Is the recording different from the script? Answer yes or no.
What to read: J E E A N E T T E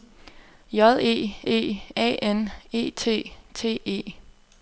no